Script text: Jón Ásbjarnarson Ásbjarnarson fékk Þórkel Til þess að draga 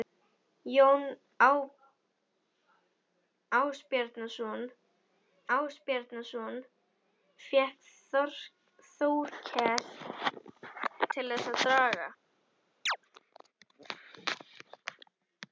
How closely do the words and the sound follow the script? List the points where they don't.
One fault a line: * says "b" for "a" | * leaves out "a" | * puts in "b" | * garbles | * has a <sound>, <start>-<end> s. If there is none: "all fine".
* has a chirp, 12.9-13.0 s